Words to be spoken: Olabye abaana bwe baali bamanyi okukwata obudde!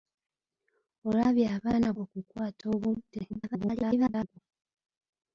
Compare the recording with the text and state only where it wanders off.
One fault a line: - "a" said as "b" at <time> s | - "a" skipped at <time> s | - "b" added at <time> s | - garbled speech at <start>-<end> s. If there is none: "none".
- "bwe baali bamanyi" skipped at 1.9 s
- garbled speech at 3.3-4.4 s